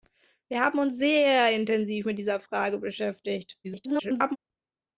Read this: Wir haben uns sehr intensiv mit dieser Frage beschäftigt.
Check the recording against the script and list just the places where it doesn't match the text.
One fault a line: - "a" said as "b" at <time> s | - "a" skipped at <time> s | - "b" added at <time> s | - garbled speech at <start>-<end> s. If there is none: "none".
- garbled speech at 3.6-4.4 s